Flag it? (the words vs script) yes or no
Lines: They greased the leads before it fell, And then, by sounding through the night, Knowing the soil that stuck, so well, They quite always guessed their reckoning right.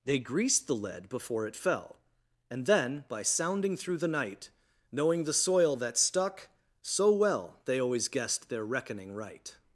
yes